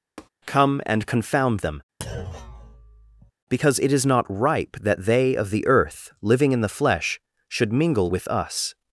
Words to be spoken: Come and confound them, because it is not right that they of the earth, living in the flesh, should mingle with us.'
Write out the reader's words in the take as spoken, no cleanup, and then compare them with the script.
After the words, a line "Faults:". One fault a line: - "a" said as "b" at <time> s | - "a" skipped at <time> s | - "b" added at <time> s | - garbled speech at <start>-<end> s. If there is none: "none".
Come and confound them, because it is not ripe that they of the earth, living in the flesh, should mingle with us.'
Faults:
- "right" said as "ripe" at 4.3 s